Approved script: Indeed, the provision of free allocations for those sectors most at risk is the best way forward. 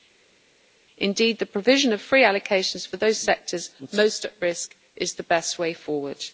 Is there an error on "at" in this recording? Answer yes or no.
no